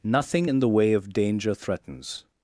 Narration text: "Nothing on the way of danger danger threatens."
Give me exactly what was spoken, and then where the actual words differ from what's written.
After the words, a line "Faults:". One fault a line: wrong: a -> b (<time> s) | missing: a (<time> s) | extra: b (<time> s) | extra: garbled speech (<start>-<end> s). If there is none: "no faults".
"Nothing in the way of danger threatens."
Faults:
wrong: on -> in (0.5 s)
missing: danger (1.5 s)